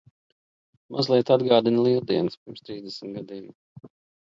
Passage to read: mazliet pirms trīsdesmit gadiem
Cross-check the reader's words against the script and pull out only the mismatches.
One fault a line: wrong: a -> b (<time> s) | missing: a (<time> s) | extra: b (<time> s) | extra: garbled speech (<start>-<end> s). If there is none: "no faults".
extra: atgādina lieldienas (1.4 s)